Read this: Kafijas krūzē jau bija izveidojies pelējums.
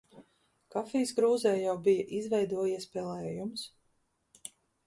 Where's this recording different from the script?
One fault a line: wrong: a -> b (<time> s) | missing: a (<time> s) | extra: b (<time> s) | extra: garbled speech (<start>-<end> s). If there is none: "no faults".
no faults